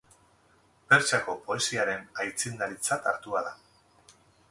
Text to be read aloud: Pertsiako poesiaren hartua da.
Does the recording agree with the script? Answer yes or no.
no